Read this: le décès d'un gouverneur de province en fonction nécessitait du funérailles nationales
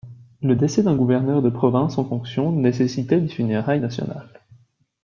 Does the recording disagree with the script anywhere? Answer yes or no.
yes